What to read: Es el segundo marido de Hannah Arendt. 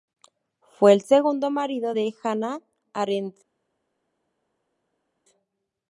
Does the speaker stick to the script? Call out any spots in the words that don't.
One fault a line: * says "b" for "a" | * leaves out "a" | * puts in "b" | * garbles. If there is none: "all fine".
* says "Fue" for "Es"